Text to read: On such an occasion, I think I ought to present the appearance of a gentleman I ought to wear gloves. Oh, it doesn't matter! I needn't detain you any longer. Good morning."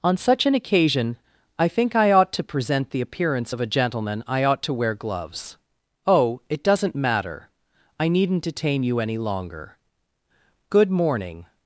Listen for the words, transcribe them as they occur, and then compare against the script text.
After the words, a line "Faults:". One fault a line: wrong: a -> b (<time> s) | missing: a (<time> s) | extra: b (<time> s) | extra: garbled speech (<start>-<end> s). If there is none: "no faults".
On such an occasion, I think I ought to present the appearance of a gentleman I ought to wear gloves. Oh, it doesn't matter! I needn't detain you any longer. Good morning."
Faults:
no faults